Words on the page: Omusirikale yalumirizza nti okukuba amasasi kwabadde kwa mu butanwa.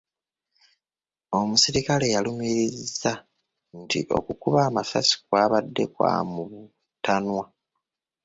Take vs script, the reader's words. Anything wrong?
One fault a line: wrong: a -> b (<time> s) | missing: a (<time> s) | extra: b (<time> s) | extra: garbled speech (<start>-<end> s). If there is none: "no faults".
no faults